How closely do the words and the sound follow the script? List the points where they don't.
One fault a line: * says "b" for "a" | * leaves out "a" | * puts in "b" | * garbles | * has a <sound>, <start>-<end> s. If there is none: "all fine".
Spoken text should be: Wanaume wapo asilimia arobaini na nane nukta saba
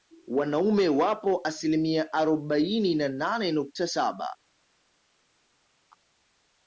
all fine